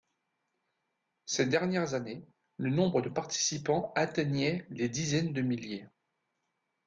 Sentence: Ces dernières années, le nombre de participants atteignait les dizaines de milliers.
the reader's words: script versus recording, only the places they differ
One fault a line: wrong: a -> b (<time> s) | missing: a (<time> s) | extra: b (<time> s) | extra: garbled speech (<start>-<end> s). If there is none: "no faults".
no faults